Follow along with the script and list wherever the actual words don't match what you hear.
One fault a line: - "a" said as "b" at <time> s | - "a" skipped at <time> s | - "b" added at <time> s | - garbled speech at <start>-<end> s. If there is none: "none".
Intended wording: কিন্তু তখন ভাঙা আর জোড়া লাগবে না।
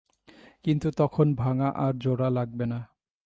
none